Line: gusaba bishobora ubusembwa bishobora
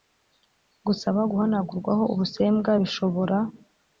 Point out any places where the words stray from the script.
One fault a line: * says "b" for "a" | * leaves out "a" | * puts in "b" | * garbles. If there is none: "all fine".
* says "guhanagurwaho" for "bishobora"